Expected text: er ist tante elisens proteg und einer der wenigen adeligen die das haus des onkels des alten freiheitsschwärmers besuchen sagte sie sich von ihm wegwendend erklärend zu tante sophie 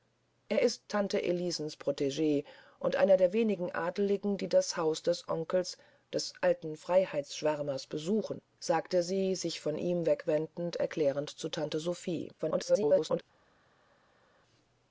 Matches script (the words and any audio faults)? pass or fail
fail